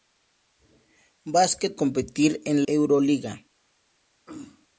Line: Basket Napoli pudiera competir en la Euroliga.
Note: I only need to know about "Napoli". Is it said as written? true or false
false